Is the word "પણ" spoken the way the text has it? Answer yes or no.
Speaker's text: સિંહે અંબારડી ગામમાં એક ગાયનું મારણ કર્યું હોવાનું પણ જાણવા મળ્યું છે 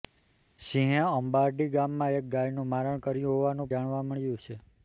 no